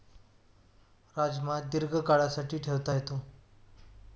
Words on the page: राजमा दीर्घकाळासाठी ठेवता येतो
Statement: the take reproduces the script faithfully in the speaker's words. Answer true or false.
true